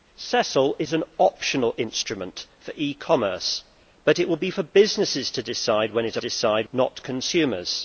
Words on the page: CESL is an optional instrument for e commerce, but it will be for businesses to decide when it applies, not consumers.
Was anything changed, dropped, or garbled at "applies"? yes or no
yes